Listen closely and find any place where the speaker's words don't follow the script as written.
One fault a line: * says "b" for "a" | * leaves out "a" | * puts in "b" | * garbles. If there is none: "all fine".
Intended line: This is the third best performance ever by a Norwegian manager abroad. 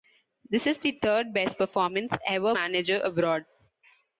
* leaves out "by a Norwegian"